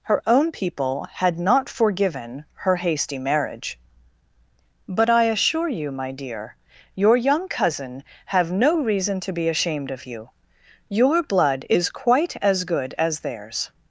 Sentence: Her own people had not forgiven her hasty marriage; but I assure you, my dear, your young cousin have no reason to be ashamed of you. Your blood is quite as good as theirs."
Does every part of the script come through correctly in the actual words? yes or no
yes